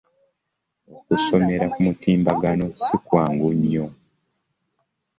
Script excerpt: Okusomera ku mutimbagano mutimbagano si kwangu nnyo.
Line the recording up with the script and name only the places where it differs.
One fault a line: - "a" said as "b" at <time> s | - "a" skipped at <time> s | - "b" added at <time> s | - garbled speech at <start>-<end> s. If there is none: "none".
- "mutimbagano" skipped at 2.6 s